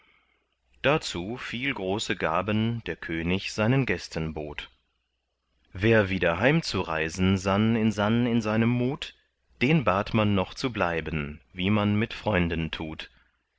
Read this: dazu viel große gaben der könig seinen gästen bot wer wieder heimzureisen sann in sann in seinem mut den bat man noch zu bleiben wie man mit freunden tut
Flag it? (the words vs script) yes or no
no